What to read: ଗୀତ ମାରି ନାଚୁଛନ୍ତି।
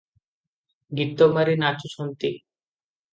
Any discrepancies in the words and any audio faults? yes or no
no